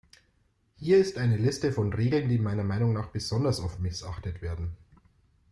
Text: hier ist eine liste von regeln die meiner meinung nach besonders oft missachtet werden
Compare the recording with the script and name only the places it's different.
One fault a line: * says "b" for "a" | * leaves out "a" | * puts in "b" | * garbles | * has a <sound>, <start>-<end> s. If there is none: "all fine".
all fine